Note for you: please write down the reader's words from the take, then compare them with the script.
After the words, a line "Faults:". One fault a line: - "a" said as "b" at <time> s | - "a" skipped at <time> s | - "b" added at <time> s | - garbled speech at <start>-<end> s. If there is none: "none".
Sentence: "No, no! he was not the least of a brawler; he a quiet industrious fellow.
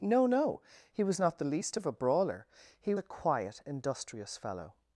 "No, no! he was not the least of a brawler; he a quiet industrious fellow.
Faults:
none